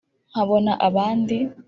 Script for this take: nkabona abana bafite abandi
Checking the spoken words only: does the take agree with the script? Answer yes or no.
no